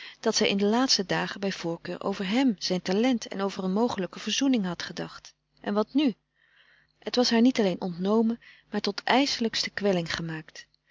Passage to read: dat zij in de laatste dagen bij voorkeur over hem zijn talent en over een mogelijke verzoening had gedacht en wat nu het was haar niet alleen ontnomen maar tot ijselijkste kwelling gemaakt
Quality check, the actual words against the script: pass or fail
pass